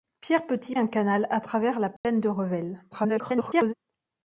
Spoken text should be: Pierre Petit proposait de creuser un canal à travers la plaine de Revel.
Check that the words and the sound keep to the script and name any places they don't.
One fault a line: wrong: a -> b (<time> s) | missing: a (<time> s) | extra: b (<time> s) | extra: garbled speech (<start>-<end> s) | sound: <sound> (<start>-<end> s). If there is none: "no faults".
missing: proposait de creuser (0.8 s)
sound: dropout (2.0-2.0 s)
extra: garbled speech (2.9-3.7 s)